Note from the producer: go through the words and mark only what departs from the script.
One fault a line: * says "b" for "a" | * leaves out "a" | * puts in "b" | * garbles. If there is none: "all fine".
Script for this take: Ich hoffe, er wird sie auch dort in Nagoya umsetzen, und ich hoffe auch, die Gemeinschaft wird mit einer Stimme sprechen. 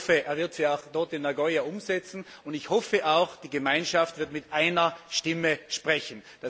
all fine